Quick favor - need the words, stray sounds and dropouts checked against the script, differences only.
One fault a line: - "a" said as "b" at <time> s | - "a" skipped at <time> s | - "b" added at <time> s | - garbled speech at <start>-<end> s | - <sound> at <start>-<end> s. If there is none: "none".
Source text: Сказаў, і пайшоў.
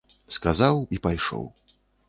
none